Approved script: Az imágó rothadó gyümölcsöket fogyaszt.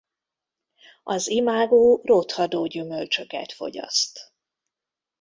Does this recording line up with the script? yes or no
yes